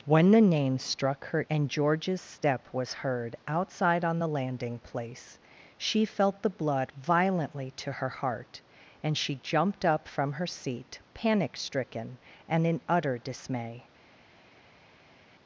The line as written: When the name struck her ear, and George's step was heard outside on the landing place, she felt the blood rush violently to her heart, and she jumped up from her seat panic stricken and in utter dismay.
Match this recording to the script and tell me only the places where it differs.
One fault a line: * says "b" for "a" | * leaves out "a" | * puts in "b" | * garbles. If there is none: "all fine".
* leaves out "ear"
* leaves out "rush"